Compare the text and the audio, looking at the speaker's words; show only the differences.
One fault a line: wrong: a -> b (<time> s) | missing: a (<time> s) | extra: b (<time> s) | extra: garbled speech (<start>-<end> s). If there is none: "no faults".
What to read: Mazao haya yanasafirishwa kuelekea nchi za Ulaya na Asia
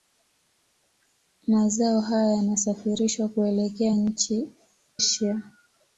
missing: za Ulaya na (4.5 s)